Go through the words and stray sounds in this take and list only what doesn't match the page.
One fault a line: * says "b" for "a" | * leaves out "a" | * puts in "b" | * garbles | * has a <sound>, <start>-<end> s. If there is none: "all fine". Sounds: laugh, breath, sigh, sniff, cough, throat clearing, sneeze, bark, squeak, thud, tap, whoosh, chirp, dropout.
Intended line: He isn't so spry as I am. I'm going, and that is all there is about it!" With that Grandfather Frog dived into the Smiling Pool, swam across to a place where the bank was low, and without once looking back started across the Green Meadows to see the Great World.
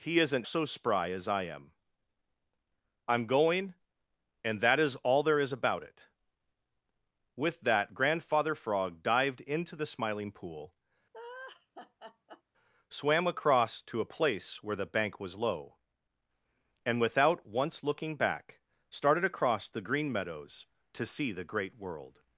* has a laugh, 11.1-12.4 s